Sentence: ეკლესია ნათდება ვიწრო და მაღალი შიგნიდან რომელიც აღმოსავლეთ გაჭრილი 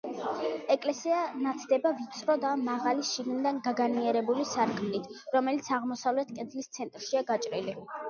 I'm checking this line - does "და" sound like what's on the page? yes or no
yes